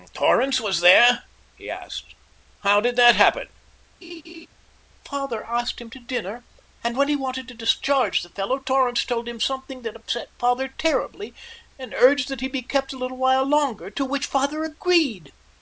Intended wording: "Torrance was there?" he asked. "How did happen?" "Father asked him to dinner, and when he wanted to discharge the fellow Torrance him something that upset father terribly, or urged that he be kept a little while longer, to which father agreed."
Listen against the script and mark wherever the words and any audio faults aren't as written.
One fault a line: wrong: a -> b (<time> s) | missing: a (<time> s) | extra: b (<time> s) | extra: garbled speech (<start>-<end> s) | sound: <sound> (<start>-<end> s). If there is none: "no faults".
extra: that (3.0 s)
sound: laugh (4.0-4.5 s)
extra: told (9.1 s)
wrong: or -> and (11.8 s)